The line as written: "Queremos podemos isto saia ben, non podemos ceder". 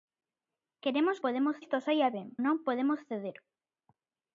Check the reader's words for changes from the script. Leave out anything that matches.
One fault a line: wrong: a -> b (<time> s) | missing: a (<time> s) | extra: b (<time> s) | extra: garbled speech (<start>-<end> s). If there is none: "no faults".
no faults